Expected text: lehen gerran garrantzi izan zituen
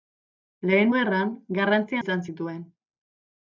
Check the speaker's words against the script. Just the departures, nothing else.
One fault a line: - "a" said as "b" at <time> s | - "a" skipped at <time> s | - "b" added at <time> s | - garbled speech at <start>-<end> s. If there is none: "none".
none